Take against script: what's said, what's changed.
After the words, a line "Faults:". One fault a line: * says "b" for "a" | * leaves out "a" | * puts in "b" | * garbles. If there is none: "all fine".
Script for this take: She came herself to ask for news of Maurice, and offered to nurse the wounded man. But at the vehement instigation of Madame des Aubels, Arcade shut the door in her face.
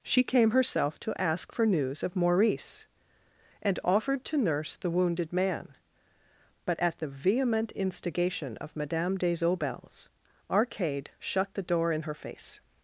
She came herself to ask for news of Maurice, and offered to nurse the wounded man. But at the vehement instigation of Madame des Aubels, Arcade shut the door in her face.
Faults:
all fine